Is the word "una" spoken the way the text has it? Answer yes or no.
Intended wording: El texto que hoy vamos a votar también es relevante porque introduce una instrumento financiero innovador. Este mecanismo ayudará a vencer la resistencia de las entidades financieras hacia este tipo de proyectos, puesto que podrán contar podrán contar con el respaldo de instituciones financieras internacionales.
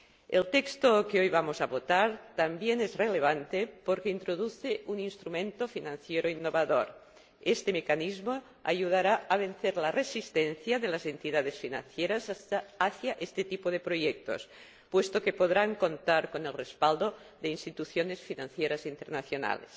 no